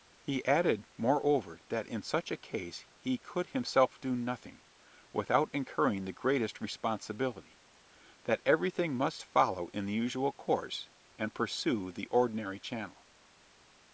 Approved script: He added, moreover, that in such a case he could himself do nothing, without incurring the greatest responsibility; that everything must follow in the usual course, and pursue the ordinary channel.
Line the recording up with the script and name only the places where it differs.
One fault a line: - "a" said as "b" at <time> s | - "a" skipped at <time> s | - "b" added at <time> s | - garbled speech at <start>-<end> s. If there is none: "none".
none